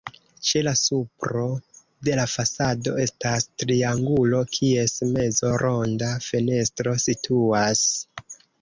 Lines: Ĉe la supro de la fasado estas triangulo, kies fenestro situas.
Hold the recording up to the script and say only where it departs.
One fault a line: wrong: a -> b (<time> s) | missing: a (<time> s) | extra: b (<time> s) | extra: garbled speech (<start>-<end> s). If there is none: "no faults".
extra: mezo ronda (5.1 s)